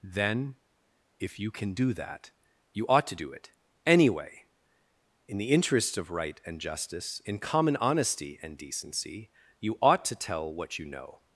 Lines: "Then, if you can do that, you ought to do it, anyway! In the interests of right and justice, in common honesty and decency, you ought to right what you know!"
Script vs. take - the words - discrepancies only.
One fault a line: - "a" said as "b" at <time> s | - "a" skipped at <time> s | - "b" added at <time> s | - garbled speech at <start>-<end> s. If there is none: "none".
- "right" said as "tell" at 10.1 s